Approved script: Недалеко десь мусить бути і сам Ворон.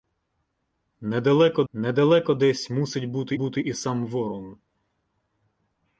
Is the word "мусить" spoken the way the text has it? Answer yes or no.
yes